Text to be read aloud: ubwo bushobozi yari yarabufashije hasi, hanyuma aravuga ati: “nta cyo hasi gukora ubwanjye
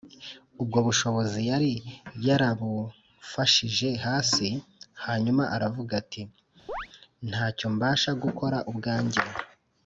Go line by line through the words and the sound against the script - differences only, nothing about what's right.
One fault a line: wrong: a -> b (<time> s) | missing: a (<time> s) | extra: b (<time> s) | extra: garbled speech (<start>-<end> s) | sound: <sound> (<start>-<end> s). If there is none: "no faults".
sound: chirp (6.7-6.9 s)
wrong: hasi -> mbasha (7.7 s)